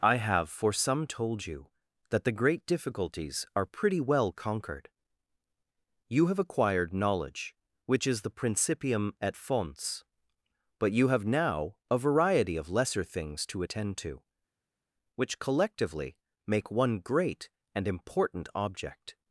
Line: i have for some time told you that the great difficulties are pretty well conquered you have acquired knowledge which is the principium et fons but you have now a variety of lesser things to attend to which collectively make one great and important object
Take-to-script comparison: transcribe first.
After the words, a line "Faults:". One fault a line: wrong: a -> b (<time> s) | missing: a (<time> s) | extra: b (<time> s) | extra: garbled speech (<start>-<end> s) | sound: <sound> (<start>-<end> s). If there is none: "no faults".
i have for some told you that the great difficulties are pretty well conquered you have acquired knowledge which is the principium et fons but you have now a variety of lesser things to attend to which collectively make one great and important object
Faults:
missing: time (1.1 s)